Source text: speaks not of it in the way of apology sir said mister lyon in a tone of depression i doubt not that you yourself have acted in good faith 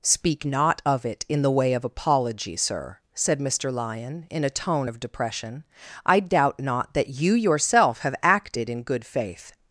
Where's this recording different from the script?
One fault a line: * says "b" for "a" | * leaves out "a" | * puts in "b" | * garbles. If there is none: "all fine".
* says "speak" for "speaks"